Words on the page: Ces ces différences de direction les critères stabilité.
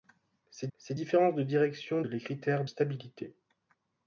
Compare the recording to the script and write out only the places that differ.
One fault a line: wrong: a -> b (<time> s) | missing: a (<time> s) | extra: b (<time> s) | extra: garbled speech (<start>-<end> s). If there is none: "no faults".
no faults